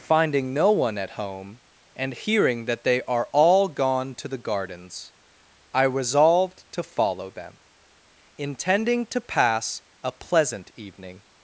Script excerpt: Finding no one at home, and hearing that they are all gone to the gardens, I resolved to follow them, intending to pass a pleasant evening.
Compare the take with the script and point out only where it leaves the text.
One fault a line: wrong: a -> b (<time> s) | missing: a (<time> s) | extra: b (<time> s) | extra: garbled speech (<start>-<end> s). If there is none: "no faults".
no faults